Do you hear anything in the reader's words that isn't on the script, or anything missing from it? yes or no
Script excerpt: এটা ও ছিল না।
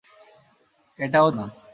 yes